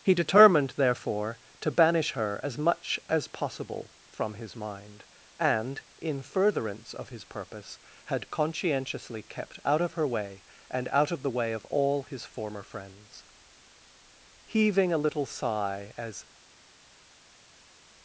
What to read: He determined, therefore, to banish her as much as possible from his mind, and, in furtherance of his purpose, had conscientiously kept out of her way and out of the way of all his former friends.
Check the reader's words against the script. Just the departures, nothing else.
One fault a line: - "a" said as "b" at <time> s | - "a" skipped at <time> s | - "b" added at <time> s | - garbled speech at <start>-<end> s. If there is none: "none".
- "Heaving a little sigh as" added at 14.4 s